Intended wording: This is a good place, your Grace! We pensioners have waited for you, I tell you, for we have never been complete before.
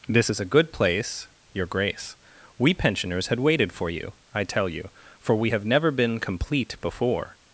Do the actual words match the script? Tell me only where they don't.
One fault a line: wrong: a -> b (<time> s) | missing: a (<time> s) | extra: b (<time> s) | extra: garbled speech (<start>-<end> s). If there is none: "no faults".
wrong: have -> had (3.3 s)